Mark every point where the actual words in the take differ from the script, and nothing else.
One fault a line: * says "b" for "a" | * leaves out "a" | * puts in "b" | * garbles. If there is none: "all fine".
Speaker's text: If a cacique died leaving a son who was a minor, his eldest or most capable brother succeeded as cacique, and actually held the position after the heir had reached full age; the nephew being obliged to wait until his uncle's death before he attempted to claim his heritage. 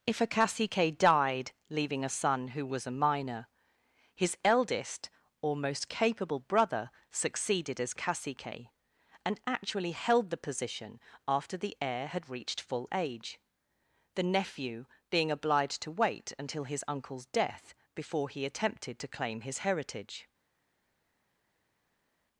all fine